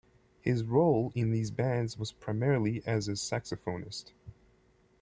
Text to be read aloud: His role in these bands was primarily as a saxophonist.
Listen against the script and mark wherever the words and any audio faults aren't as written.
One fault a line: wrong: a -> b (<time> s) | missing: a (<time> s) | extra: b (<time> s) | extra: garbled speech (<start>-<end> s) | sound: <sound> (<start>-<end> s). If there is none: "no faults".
no faults